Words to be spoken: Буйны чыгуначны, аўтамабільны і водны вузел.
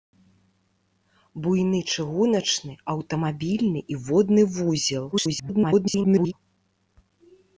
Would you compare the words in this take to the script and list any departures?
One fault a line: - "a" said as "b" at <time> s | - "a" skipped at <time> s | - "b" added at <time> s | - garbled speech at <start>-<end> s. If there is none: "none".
- garbled speech at 5.1-6.3 s